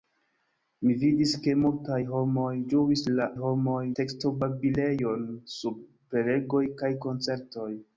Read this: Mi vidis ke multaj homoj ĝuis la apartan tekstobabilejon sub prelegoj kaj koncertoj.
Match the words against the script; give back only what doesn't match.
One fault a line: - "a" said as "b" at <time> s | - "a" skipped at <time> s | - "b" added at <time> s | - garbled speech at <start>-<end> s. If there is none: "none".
- "apartan" said as "homoj" at 3.4 s